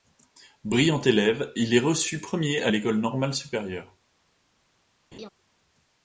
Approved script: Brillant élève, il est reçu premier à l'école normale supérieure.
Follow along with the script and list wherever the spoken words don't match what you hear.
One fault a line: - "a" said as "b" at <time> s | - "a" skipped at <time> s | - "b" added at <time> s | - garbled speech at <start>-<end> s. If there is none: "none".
none